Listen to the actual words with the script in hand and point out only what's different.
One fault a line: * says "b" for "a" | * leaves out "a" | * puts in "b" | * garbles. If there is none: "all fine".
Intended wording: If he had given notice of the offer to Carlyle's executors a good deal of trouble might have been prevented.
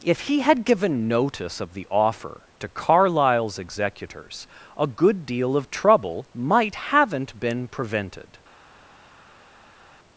* says "haven't" for "have"